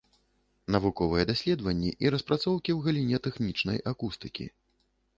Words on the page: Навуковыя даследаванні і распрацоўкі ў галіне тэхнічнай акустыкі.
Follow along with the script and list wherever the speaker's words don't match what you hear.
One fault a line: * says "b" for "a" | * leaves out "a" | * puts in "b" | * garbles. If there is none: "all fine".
all fine